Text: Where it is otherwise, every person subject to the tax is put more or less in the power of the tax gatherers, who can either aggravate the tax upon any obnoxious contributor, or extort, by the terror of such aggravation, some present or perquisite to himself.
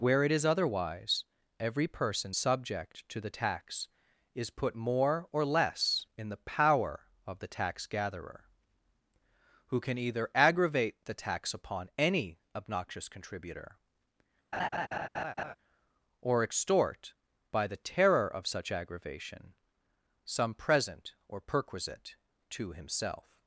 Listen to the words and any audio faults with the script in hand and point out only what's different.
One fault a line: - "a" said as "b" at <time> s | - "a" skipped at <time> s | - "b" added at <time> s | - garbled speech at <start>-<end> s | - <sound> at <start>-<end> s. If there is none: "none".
- "gatherers" said as "gatherer" at 7.9 s
- laugh at 14.5-15.6 s